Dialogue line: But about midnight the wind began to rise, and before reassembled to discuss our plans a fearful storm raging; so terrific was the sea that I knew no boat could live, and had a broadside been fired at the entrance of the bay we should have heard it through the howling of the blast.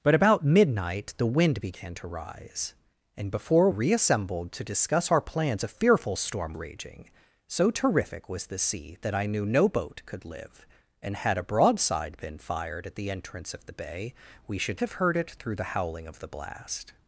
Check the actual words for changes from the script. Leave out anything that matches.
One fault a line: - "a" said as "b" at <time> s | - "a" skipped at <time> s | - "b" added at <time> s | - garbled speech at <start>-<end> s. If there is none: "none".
none